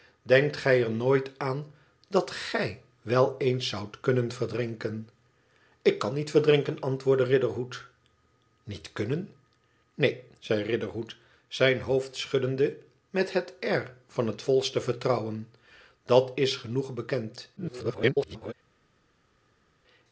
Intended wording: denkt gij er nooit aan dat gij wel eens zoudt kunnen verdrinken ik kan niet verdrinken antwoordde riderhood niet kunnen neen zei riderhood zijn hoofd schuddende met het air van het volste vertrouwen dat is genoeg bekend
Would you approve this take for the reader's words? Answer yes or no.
no